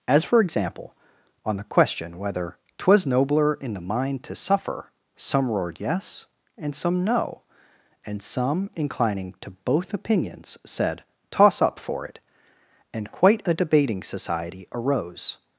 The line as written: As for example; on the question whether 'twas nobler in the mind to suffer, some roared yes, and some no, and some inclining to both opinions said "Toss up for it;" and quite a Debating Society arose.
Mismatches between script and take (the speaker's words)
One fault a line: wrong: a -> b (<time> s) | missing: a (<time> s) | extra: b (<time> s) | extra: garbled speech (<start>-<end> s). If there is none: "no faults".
no faults